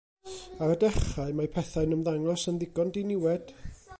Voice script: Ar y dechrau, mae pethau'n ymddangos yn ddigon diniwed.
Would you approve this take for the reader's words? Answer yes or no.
yes